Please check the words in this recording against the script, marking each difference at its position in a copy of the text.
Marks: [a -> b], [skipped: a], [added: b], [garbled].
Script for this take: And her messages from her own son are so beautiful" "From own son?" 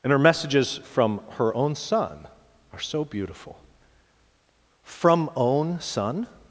And her messages from her own son are so beautiful" "From own son?"